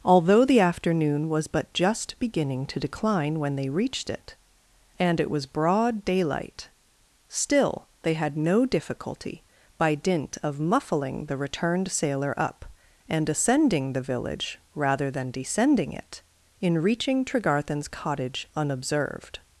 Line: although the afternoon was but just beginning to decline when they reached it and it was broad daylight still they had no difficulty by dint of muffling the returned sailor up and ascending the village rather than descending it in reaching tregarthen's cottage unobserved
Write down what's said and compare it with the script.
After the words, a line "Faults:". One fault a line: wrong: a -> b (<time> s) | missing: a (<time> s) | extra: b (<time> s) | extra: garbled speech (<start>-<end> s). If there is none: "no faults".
although the afternoon was but just beginning to decline when they reached it and it was broad daylight still they had no difficulty by dint of muffling the returned sailor up and ascending the village rather than descending it in reaching tregarthen's cottage unobserved
Faults:
no faults